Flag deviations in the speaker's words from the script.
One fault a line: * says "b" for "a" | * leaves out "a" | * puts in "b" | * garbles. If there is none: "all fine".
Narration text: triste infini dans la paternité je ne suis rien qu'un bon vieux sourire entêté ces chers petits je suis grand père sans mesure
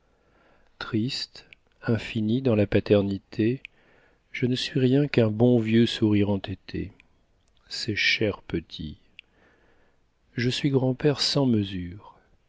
all fine